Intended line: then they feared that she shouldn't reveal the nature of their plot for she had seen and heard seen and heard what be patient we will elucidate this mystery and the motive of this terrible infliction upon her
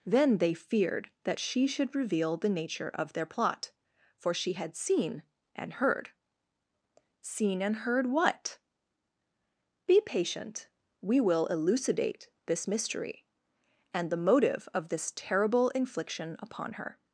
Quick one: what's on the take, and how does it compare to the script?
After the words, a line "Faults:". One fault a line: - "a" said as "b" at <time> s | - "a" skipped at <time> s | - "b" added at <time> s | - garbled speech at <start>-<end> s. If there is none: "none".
then they feared that she should reveal the nature of their plot for she had seen and heard seen and heard what be patient we will elucidate this mystery and the motive of this terrible infliction upon her
Faults:
- "shouldn't" said as "should" at 1.7 s